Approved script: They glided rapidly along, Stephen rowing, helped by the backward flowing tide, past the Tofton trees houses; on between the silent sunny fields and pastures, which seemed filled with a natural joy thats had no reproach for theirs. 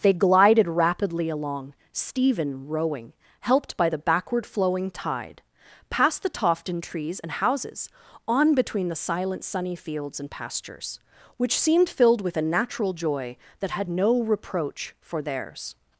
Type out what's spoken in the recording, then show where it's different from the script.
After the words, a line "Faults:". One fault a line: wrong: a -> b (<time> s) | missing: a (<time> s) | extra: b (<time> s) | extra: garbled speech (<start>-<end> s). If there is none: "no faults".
They glided rapidly along, Stephen rowing, helped by the backward flowing tide, past the Tofton trees and houses; on between the silent sunny fields and pastures, which seemed filled with a natural joy that had no reproach for theirs.
Faults:
extra: and (7.2 s)
wrong: thats -> that (13.6 s)